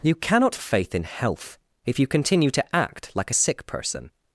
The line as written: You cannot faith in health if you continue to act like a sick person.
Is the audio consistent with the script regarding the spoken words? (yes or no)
yes